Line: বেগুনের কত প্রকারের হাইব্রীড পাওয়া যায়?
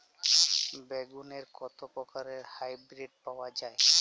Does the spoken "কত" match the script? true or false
true